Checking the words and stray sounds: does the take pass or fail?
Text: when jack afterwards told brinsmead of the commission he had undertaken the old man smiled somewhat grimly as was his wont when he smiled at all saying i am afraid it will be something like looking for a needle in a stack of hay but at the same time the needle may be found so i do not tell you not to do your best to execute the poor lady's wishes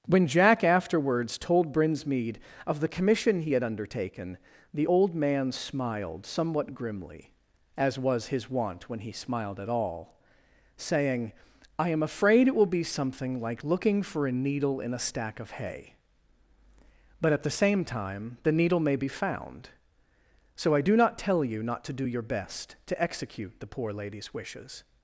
pass